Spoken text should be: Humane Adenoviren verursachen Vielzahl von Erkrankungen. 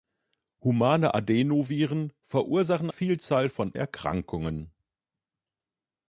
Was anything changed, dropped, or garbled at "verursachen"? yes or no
no